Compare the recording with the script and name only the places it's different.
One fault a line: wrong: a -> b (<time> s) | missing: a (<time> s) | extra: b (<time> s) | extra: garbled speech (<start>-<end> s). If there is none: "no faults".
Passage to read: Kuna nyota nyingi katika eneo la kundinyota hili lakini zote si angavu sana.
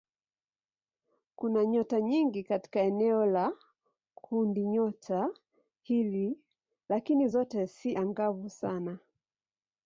no faults